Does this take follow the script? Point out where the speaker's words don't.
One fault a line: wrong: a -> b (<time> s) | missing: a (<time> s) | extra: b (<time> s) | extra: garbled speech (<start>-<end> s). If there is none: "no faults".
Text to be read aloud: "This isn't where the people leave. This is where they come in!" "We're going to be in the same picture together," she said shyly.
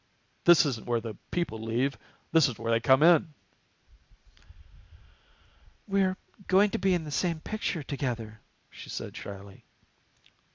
no faults